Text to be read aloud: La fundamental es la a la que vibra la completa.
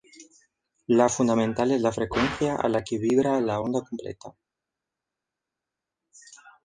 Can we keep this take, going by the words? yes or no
no